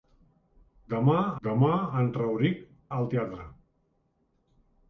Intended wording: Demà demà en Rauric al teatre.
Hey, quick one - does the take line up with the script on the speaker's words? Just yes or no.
yes